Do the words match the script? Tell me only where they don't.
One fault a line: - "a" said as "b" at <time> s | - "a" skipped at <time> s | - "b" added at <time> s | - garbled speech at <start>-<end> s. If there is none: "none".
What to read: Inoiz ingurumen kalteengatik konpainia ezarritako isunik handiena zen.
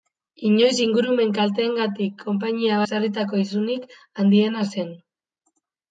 none